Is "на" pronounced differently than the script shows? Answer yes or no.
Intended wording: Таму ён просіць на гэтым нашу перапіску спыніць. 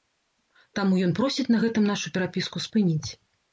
no